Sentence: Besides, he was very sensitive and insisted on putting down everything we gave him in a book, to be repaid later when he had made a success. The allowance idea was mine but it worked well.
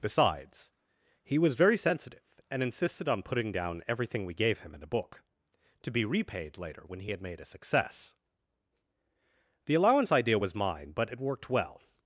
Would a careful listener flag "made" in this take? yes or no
no